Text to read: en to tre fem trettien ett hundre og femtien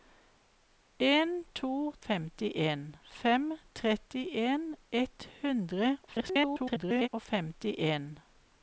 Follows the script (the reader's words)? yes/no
no